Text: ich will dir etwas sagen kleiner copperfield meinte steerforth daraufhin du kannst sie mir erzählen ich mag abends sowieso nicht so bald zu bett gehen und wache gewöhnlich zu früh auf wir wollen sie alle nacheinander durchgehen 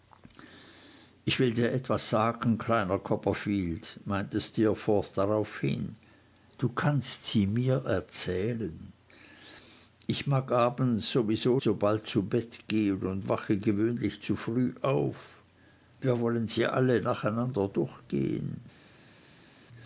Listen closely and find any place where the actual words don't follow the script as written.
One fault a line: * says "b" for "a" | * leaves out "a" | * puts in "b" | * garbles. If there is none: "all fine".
* leaves out "nicht"